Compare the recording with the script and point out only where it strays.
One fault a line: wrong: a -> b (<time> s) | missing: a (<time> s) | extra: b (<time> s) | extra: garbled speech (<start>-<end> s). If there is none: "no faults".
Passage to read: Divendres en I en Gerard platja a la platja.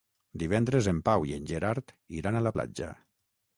extra: Pau (1.1 s)
wrong: platja -> iran (2.2 s)